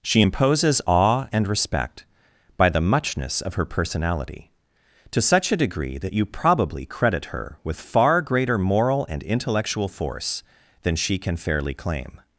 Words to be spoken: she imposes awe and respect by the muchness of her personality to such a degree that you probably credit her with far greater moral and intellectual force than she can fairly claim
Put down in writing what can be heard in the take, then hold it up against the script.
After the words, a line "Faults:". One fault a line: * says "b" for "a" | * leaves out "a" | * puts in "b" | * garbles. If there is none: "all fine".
she imposes awe and respect by the muchness of her personality to such a degree that you probably credit her with far greater moral and intellectual force than she can fairly claim
Faults:
all fine